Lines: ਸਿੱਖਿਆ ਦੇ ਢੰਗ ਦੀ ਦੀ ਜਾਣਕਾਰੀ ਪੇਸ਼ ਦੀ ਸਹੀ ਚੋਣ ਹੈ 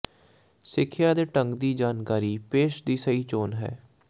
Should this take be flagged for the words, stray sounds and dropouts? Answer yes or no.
yes